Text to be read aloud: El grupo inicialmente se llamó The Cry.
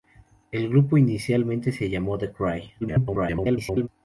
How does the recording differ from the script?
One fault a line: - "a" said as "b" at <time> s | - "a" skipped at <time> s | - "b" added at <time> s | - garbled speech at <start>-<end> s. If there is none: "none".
- garbled speech at 2.8-3.9 s